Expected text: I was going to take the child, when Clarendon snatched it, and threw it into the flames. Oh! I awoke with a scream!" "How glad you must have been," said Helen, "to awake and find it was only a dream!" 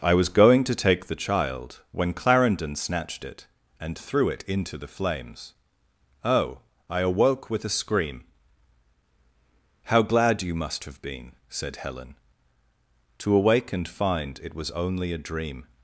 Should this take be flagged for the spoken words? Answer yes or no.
no